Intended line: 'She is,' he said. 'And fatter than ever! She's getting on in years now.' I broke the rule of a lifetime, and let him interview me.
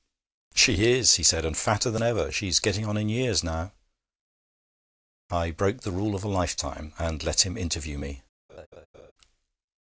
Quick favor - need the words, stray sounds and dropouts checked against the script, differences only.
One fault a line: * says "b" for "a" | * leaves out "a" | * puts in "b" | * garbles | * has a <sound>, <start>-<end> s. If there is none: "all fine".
* has a laugh, 8.5-9.1 s